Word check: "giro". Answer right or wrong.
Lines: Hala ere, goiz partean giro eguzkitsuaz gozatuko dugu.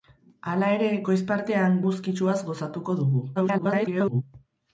wrong